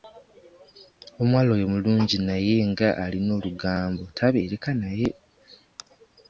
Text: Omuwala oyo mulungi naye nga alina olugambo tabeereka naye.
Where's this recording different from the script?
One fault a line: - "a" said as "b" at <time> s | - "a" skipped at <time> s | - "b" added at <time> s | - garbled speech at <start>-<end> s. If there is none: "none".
none